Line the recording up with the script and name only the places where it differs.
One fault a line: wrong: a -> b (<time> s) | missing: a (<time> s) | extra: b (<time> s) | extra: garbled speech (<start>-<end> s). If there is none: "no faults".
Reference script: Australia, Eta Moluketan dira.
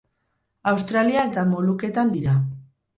no faults